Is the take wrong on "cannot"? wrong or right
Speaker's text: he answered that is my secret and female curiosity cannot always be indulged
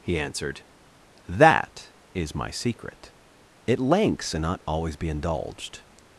wrong